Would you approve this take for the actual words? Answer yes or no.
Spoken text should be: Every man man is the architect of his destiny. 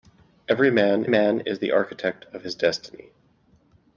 yes